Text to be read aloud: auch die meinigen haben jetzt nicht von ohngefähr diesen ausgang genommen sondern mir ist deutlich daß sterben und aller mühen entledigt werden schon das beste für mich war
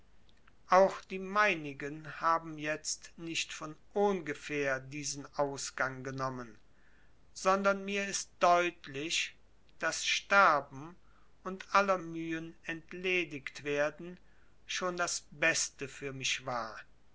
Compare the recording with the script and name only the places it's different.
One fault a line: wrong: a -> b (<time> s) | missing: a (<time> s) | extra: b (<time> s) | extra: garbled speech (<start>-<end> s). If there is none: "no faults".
no faults